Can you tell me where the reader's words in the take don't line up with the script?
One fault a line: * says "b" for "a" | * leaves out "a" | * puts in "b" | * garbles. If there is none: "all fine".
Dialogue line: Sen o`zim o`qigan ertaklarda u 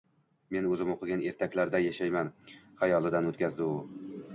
* says "Men" for "Sen"
* puts in "yashayman xayolidan o`tkazdi"